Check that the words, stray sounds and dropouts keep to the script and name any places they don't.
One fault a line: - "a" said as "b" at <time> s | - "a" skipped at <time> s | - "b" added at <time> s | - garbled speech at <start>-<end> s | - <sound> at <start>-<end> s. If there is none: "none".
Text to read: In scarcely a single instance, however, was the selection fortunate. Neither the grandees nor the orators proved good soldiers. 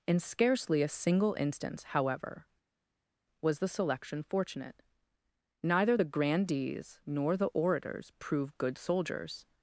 none